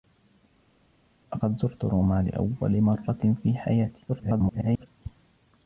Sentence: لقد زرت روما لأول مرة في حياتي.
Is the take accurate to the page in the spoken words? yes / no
no